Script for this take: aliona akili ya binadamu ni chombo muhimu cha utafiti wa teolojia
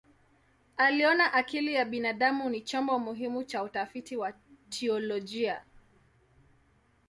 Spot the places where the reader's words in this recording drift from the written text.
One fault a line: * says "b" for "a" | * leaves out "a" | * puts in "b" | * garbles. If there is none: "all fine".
all fine